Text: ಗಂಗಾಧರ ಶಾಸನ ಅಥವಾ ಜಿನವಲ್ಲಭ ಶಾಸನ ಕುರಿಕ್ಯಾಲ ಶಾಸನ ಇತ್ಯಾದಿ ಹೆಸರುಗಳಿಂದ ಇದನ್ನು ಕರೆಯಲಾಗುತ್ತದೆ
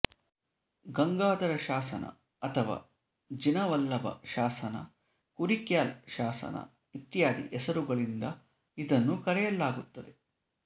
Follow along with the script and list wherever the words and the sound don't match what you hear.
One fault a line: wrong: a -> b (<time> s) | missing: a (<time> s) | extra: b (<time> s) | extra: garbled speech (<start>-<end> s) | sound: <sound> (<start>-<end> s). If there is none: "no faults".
no faults